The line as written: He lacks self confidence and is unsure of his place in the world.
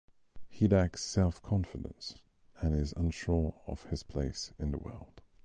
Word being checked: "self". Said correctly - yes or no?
yes